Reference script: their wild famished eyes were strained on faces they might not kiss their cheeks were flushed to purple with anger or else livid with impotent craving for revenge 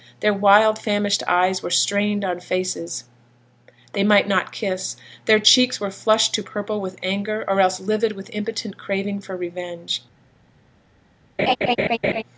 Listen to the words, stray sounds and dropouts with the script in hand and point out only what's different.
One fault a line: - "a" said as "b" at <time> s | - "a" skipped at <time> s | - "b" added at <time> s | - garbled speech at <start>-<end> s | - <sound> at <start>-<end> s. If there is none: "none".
- laugh at 11.4-12.2 s